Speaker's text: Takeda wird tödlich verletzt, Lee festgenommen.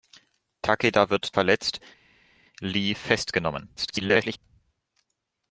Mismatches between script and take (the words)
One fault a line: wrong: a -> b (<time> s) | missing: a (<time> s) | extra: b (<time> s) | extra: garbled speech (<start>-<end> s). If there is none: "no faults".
missing: tödlich (1.4 s)
extra: garbled speech (3.8-4.4 s)